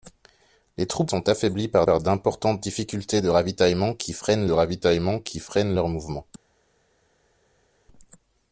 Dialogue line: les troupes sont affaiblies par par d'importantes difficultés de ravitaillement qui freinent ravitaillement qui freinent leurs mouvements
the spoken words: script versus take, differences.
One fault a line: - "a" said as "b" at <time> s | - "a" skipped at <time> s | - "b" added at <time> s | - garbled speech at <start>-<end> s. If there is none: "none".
none